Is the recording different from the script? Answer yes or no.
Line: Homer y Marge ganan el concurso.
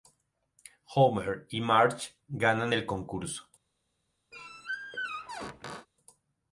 no